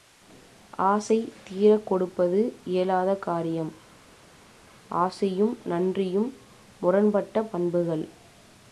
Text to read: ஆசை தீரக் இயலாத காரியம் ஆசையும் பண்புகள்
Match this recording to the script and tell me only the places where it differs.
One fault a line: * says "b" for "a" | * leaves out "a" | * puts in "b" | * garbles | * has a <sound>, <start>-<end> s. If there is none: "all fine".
* puts in "கொடுப்பது"
* puts in "நன்றியும் முரண்பட்ட"